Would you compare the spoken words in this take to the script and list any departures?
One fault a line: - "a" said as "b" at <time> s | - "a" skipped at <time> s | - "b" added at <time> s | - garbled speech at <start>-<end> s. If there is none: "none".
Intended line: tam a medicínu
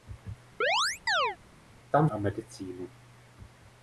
none